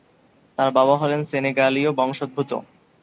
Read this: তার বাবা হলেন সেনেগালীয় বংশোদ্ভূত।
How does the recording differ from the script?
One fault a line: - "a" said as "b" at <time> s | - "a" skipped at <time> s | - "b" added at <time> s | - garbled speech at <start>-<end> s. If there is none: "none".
none